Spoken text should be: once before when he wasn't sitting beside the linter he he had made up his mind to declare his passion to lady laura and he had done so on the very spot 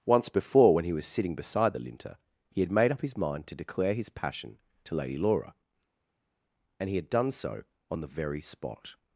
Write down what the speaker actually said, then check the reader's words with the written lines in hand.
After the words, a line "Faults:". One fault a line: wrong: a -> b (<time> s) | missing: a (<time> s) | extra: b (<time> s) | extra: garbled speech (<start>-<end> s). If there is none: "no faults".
once before when he was sitting beside the linter he had made up his mind to declare his passion to lady laura and he had done so on the very spot
Faults:
wrong: wasn't -> was (0.9 s)
missing: he (2.6 s)